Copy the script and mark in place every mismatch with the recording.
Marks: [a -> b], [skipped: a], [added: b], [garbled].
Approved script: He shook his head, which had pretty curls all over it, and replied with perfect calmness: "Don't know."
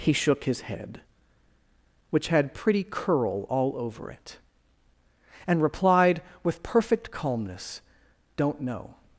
He shook his head, which had pretty [curls -> curl] all over it, and replied with perfect calmness: "Don't know."